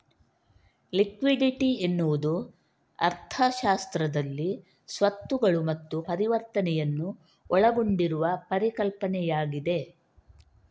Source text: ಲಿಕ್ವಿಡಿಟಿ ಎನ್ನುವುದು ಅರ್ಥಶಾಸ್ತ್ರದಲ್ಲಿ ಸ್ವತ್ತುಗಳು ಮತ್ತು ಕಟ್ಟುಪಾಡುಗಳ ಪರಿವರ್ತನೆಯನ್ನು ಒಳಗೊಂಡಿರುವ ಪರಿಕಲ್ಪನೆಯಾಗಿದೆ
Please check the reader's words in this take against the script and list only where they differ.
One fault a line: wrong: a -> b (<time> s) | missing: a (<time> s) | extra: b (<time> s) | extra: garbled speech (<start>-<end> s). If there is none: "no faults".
missing: ಕಟ್ಟುಪಾಡುಗಳ (6.0 s)